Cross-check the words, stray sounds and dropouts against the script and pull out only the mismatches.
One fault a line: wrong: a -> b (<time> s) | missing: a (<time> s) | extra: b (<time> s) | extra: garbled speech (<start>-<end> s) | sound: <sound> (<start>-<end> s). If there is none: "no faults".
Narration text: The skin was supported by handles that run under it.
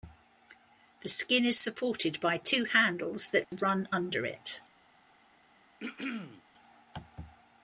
wrong: was -> is (1.4 s)
extra: two (2.4 s)
sound: dropout (3.4-3.5 s)
sound: throat clearing (5.8-6.4 s)